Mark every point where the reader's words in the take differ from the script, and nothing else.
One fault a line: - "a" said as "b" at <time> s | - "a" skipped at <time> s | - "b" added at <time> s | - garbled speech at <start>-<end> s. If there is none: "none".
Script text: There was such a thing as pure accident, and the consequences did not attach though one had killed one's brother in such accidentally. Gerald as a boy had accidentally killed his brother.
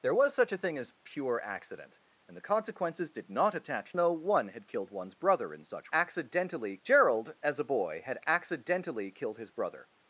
none